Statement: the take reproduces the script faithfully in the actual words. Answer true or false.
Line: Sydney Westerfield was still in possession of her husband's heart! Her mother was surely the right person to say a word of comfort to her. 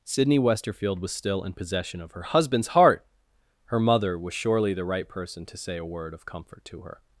true